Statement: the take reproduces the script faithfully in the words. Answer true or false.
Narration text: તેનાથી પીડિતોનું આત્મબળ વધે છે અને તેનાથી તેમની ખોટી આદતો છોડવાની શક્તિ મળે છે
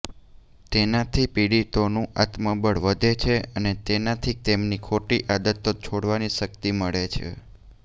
true